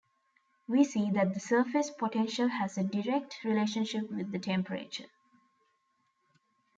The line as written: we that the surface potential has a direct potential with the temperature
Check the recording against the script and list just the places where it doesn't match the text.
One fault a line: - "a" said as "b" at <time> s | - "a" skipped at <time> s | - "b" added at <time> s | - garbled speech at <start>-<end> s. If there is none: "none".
- "see" added at 0.8 s
- "potential" said as "relationship" at 3.4 s